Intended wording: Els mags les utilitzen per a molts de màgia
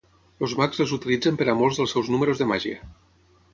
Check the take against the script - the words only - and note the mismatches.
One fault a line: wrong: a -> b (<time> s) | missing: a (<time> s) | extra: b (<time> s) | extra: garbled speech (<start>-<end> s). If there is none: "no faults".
extra: dels seus números (1.8 s)